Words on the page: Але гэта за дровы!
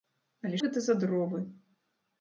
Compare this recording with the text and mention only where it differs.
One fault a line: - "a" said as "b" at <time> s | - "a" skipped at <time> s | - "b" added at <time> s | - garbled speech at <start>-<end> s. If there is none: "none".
none